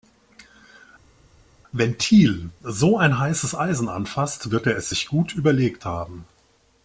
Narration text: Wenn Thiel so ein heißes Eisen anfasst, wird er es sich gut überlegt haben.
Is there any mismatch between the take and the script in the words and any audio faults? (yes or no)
no